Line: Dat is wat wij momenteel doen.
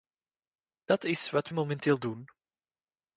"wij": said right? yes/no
no